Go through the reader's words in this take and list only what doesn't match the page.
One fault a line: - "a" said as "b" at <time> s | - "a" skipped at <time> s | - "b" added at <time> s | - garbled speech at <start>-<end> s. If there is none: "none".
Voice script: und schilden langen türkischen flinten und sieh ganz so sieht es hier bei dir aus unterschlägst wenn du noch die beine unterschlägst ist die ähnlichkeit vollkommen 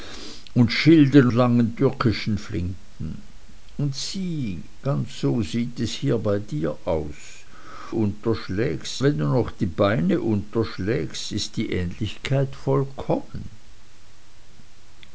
none